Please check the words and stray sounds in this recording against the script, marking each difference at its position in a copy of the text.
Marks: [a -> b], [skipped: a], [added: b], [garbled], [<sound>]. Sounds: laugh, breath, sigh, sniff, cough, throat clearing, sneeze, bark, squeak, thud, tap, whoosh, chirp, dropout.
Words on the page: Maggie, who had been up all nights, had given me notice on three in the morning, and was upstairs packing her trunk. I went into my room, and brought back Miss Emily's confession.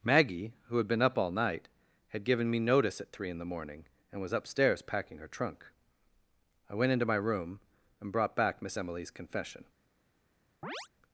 Maggie, who had been up all [nights, -> night] had given me notice [on -> at] three in the morning, and was upstairs packing her trunk. I went into my room, and brought back Miss Emily's confession. [chirp]